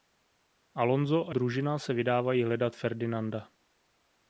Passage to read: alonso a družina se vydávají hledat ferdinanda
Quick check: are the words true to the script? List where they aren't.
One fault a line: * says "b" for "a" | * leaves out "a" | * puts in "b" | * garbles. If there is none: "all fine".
all fine